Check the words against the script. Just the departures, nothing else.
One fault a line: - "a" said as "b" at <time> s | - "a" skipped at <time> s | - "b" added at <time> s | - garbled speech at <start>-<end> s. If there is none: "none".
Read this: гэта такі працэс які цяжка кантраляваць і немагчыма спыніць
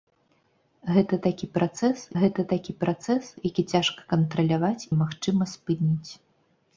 - "гэта такі працэс" added at 2.2 s
- "і" skipped at 4.9 s